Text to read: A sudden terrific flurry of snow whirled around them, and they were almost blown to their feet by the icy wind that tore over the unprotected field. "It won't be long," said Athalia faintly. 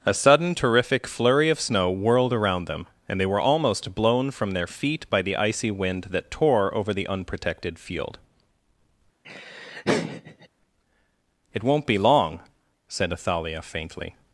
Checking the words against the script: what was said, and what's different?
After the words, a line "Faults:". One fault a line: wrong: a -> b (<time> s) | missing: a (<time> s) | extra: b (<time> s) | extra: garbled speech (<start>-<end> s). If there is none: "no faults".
A sudden terrific flurry of snow whirled around them, and they were almost blown from their feet by the icy wind that tore over the unprotected field. "It won't be long," said Athalia faintly.
Faults:
wrong: to -> from (4.3 s)